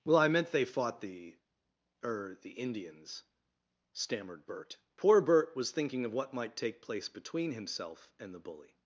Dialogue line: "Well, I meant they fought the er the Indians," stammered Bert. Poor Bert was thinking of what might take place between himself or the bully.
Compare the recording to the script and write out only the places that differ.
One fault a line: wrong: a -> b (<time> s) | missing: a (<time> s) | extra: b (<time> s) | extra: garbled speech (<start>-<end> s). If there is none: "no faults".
wrong: or -> and (8.2 s)